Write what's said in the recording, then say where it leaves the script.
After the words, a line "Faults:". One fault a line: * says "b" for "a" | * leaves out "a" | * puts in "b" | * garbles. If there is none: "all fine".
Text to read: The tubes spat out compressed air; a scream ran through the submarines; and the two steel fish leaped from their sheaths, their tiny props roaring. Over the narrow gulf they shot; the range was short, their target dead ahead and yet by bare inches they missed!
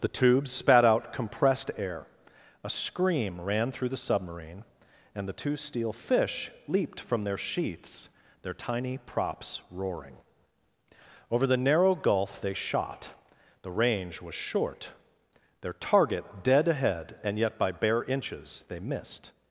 The tubes spat out compressed air; a scream ran through the submarine; and the two steel fish leaped from their sheaths, their tiny props roaring. Over the narrow gulf they shot; the range was short, their target dead ahead and yet by bare inches they missed!
Faults:
* says "submarine" for "submarines"